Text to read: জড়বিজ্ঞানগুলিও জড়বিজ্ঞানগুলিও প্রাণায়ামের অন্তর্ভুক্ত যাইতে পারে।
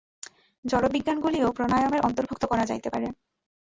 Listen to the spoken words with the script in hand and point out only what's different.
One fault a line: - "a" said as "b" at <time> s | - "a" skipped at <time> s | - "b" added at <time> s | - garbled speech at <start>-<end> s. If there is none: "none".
- "জড়বিজ্ঞানগুলিও" skipped at 1.5 s
- "করা" added at 2.4 s